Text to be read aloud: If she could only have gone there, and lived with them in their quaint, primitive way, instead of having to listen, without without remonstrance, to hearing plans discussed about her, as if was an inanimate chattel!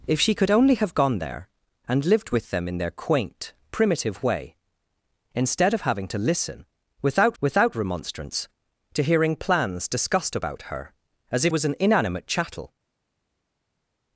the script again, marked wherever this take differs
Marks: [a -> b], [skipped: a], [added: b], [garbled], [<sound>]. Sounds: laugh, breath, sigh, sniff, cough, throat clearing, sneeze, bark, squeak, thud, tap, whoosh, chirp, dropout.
If she could only have gone there, and lived with them in their quaint, primitive way, instead of having to listen, without without remonstrance, to hearing plans discussed about her, as if was an inanimate chattel!